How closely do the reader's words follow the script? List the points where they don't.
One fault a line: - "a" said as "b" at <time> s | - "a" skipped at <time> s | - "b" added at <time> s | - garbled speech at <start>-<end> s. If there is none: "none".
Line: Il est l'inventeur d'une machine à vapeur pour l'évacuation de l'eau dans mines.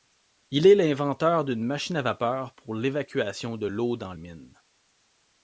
none